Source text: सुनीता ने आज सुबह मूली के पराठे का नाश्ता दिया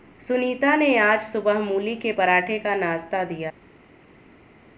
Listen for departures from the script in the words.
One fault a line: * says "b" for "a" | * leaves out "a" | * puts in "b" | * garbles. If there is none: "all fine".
all fine